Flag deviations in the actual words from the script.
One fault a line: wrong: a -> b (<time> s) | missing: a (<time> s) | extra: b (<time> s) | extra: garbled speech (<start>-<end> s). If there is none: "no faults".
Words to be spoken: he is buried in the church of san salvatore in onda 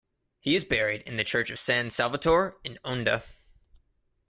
no faults